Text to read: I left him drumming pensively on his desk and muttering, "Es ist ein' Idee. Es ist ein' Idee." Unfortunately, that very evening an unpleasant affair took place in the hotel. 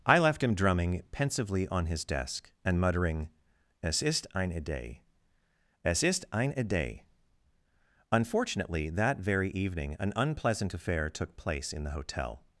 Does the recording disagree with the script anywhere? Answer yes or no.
no